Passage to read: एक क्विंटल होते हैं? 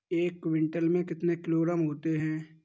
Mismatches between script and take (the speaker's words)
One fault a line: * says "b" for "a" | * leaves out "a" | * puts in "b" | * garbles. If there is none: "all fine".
* puts in "में कितने किलोग्राम"